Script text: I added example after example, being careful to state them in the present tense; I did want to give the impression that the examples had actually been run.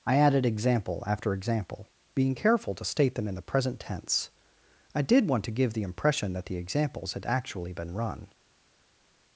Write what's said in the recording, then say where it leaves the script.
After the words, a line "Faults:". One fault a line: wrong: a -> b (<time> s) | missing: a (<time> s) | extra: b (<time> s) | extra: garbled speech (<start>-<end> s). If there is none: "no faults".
I added example after example, being careful to state them in the present tense; I did want to give the impression that the examples had actually been run.
Faults:
no faults